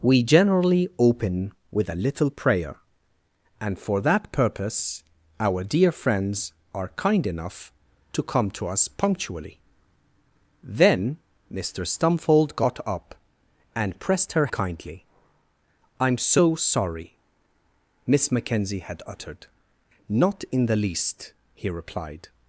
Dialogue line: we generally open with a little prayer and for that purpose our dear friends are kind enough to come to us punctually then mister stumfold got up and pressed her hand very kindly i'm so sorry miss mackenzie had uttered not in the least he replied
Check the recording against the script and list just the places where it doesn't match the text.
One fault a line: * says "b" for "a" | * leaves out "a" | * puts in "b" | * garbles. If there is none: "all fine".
* leaves out "hand very"